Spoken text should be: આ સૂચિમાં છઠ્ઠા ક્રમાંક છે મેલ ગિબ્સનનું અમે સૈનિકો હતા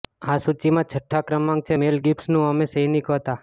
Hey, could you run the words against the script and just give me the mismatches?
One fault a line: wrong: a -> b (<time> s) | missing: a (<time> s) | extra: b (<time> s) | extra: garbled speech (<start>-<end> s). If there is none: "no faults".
no faults